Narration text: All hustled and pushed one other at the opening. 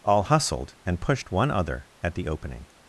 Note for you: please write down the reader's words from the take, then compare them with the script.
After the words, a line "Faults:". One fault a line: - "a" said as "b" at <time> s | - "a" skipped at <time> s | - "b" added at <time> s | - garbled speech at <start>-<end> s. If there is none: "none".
All hustled and pushed one other at the opening.
Faults:
none